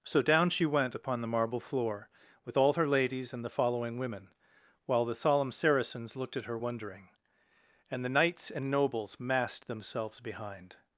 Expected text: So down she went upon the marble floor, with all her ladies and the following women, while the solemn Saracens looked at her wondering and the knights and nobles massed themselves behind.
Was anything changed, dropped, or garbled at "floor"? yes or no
no